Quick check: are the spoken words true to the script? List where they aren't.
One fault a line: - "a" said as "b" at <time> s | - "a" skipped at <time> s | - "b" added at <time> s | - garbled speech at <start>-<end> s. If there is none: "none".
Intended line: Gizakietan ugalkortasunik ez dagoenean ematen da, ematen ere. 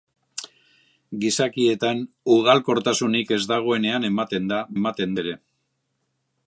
none